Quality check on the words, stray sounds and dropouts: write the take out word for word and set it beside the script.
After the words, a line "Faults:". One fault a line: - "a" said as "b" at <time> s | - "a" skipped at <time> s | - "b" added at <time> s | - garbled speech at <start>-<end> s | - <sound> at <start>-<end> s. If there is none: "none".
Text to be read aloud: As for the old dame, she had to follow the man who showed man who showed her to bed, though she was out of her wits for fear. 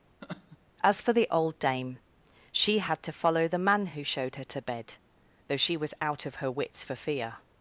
As for the old dame, she had to follow the man who showed her to bed, though she was out of her wits for fear.
Faults:
- laugh at 0.2-0.6 s
- "man who showed" skipped at 4.4 s